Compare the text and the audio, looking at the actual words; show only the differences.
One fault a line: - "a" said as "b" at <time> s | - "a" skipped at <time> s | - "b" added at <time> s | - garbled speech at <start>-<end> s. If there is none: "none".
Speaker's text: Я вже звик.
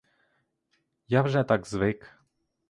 - "так" added at 1.4 s